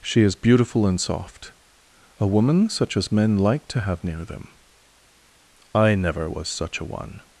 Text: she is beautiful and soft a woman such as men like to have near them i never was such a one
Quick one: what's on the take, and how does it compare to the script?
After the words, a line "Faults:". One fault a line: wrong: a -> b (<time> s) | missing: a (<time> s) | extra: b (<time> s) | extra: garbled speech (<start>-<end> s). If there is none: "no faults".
she is beautiful and soft a woman such as men like to have near them i never was such a one
Faults:
no faults